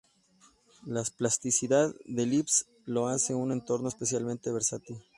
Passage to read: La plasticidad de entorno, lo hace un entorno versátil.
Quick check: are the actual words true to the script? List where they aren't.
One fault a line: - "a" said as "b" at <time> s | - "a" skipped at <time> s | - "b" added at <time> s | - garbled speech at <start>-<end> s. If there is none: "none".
- "entorno" said as "lisp" at 2.2 s
- "especialmente" added at 3.9 s